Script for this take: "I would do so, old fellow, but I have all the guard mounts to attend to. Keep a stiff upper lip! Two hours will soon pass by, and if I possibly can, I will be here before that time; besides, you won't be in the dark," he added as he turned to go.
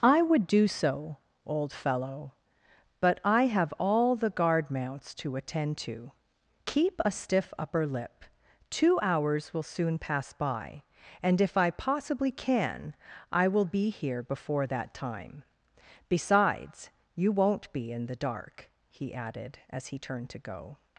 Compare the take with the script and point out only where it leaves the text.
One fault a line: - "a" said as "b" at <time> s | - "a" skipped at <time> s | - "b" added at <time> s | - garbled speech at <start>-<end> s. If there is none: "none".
none